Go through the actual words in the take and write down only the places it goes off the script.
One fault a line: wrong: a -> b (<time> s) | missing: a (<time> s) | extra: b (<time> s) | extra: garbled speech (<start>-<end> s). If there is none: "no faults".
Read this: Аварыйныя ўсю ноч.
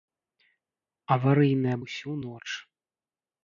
no faults